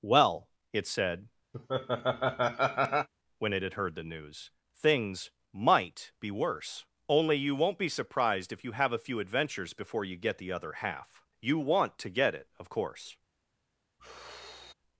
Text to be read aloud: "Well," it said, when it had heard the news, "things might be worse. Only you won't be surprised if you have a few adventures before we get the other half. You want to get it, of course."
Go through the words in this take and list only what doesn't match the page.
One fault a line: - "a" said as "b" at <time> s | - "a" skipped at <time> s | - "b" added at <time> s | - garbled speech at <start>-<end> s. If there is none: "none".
- "we" said as "you" at 10.0 s